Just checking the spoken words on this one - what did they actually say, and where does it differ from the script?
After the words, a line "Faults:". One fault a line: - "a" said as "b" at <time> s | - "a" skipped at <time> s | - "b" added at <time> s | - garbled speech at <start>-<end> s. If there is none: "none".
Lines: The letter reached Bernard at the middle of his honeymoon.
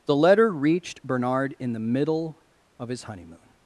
The letter reached Bernard in the middle of his honeymoon.
Faults:
- "at" said as "in" at 1.6 s